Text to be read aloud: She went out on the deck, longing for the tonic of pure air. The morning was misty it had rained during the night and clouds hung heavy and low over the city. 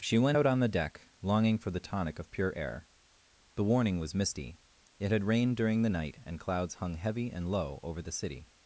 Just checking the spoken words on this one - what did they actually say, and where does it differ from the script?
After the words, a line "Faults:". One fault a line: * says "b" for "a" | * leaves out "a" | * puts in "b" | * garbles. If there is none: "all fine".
She went out on the deck, longing for the tonic of pure air. The warning was misty it had rained during the night and clouds hung heavy and low over the city.
Faults:
* says "warning" for "morning"